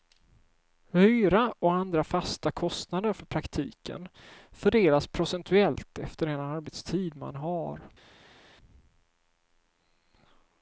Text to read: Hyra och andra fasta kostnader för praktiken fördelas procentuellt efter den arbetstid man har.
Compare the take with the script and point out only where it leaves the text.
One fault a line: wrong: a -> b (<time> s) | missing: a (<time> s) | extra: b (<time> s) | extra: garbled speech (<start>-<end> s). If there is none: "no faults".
no faults